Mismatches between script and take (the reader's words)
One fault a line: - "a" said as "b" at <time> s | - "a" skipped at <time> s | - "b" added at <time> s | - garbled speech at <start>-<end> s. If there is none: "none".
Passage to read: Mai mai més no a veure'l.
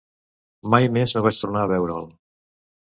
- "mai" skipped at 0.9 s
- "vaig tornar" added at 1.3 s